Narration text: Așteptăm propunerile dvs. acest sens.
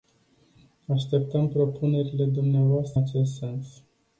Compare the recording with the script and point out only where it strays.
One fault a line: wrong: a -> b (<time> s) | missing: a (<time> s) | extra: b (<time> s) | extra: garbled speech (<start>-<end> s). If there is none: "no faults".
no faults